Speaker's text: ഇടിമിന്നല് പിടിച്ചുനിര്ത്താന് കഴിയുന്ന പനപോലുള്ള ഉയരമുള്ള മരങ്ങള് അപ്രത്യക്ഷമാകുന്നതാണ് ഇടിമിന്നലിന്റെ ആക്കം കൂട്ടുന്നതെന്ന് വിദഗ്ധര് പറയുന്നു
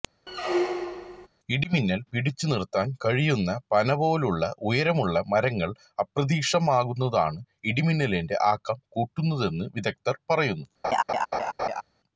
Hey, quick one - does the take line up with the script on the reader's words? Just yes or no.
yes